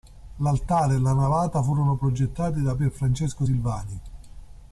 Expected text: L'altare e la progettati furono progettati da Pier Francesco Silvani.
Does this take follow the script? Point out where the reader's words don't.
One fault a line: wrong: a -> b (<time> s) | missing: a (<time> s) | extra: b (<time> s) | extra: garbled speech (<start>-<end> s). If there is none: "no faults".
wrong: progettati -> navata (1.1 s)